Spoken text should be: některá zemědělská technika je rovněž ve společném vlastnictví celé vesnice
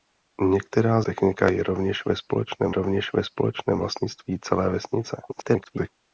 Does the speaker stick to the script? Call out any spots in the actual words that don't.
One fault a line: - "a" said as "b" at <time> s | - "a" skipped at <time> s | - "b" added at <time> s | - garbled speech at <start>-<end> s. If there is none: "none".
- "zemědělská" skipped at 1.0 s
- "rovněž ve společném" added at 2.7 s
- garbled speech at 5.3-5.9 s